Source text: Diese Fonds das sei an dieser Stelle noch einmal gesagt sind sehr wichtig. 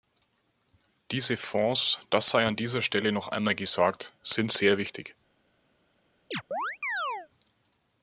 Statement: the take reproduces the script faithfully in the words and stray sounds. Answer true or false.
false